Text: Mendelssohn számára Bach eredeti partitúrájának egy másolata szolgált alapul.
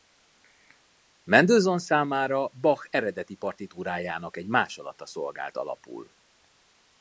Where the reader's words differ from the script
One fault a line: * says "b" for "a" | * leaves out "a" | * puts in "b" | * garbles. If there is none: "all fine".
all fine